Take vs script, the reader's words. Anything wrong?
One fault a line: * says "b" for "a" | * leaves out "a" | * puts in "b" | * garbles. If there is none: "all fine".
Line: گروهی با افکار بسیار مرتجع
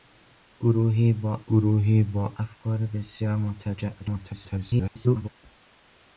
* puts in "گروهی با"
* garbles